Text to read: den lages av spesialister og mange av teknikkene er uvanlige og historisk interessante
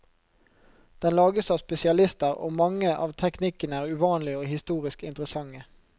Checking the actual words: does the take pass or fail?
pass